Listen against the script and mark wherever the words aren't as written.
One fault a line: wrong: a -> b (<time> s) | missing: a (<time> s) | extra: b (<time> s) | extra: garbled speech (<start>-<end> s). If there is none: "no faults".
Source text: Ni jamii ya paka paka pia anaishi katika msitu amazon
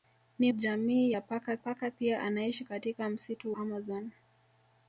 no faults